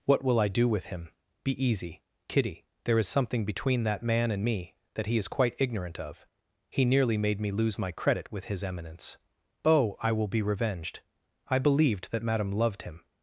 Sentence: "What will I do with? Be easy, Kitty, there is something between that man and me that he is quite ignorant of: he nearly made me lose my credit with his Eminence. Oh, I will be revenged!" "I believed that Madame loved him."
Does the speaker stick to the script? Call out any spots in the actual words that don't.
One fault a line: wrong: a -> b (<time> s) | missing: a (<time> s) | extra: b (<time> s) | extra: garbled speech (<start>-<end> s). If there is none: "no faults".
extra: him (0.9 s)